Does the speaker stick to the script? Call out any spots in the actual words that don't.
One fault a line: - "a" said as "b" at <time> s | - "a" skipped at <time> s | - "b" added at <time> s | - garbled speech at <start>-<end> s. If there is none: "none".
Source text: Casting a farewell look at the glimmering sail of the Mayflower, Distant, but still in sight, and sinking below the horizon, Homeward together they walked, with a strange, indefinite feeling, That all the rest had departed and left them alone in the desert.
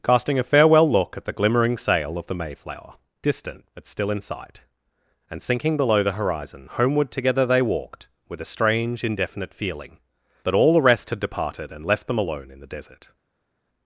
none